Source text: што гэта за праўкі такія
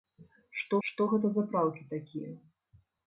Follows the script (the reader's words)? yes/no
no